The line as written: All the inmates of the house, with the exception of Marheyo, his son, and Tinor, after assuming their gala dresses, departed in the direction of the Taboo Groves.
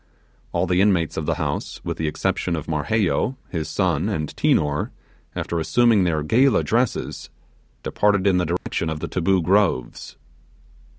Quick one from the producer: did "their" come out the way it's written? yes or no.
yes